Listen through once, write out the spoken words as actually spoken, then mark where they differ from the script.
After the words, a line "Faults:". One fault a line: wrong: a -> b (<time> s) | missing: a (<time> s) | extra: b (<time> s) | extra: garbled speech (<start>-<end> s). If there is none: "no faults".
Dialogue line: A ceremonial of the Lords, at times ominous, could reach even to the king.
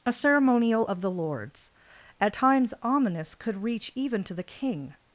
A ceremonial of the Lords, at times ominous, could reach even to the king.
Faults:
no faults